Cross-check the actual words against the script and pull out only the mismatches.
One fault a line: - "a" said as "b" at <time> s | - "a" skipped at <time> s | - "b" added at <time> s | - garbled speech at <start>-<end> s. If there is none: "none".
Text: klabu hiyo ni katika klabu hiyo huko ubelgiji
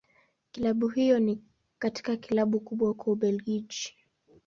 - "hiyo" said as "kubwa" at 2.6 s